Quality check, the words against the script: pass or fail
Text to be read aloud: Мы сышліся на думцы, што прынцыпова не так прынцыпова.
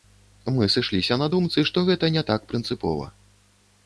fail